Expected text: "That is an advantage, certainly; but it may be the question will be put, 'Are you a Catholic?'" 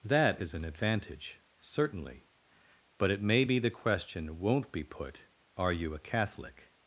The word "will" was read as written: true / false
false